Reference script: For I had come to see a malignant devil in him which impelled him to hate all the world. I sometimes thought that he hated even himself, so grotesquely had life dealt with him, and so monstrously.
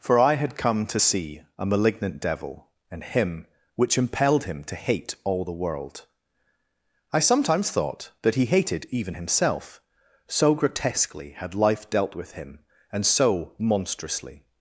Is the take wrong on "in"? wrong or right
wrong